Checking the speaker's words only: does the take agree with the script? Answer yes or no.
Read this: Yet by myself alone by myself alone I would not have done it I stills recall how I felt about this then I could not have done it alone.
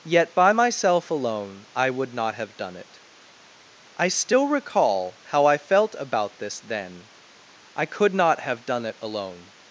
no